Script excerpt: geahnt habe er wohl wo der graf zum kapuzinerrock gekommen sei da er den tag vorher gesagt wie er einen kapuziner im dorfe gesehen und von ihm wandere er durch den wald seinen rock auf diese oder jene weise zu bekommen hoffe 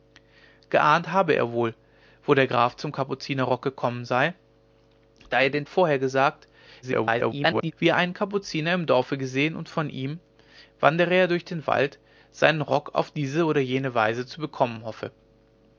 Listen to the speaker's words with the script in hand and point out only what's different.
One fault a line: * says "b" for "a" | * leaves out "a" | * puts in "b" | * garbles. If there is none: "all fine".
* leaves out "tag"
* garbles